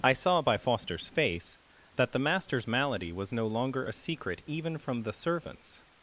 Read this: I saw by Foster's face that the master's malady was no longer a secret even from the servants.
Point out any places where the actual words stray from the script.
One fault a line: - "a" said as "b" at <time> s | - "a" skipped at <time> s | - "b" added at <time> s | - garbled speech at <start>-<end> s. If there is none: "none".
none